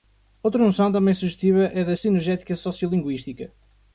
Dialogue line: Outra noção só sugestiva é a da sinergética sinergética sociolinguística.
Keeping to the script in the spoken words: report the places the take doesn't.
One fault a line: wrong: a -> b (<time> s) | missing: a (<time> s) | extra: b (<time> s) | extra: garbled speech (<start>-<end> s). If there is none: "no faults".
wrong: só -> também (0.9 s)
missing: sinergética (2.5 s)